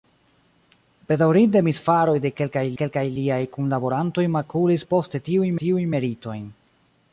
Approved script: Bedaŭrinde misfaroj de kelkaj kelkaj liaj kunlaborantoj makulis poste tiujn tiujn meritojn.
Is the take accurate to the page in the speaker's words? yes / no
yes